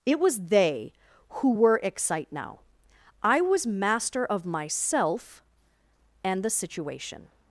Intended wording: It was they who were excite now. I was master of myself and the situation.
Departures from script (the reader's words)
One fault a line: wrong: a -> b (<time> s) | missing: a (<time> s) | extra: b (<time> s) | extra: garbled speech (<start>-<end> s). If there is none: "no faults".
no faults